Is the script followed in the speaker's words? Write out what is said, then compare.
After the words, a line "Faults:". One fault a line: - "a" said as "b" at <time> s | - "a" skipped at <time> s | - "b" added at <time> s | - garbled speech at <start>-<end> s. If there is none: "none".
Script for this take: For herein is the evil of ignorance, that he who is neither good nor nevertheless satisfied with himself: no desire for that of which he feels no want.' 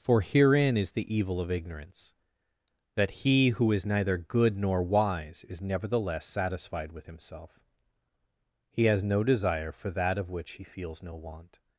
For herein is the evil of ignorance, that he who is neither good nor wise is nevertheless satisfied with himself: he has no desire for that of which he feels no want.'
Faults:
- "wise is" added at 4.8 s
- "he has" added at 8.7 s